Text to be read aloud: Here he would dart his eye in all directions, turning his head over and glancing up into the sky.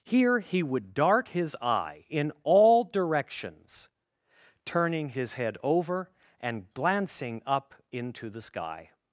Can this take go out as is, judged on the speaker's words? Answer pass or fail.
pass